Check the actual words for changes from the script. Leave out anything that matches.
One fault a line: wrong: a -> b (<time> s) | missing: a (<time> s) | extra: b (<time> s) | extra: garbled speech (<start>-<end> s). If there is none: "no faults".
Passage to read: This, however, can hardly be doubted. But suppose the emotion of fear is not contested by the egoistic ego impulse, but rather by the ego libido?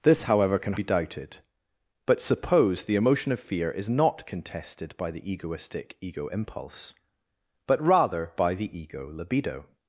missing: hardly (0.7 s)